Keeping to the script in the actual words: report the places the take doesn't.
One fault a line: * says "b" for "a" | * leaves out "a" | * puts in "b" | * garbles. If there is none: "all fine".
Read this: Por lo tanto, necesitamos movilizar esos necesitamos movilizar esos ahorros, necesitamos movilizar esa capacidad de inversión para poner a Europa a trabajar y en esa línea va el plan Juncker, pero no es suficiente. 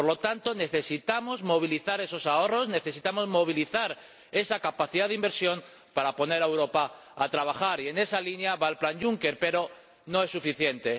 * leaves out "necesitamos movilizar esos"